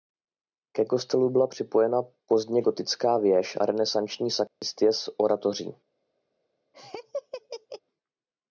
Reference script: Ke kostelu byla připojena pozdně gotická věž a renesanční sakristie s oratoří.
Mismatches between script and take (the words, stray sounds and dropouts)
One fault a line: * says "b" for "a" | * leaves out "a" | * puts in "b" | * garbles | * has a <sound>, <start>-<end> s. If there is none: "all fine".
* has a dropout, 4.5-4.6 s
* has a laugh, 6.7-7.8 s